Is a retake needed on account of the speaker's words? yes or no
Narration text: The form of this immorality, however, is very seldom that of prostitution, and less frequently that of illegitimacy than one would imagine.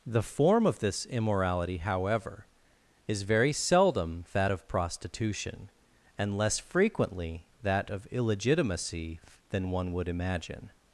no